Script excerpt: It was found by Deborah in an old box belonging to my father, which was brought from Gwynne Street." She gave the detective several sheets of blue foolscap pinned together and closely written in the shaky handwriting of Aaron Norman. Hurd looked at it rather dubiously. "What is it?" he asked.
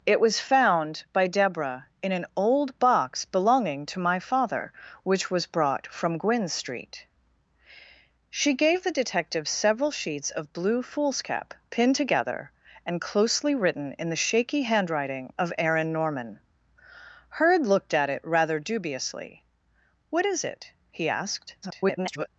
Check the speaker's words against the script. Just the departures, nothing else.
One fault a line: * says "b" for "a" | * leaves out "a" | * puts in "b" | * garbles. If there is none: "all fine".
* garbles